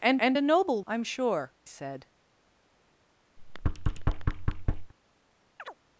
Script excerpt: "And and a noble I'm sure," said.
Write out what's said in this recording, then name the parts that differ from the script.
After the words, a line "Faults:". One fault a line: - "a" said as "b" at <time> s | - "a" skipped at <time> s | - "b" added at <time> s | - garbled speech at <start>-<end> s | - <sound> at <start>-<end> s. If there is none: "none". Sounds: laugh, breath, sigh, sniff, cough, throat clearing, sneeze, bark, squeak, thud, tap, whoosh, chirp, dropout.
"And and a noble I'm sure," said.
Faults:
- thud at 3.4-4.9 s
- chirp at 5.6-5.8 s